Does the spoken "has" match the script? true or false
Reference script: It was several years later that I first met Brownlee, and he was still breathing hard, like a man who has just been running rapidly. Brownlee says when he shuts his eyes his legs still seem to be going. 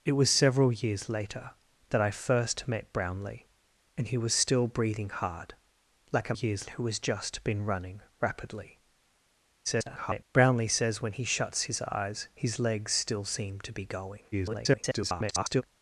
true